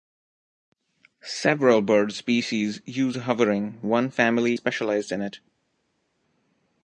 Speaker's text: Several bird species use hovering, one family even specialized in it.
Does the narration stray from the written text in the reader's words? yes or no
yes